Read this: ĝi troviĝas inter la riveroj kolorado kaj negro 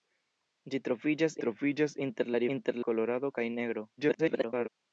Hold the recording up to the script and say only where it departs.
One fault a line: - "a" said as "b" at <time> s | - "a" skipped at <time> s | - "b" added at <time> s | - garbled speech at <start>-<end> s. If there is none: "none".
- "troviĝas" added at 1.4 s
- "riveroj" said as "inter" at 2.6 s
- garbled speech at 4.0-4.7 s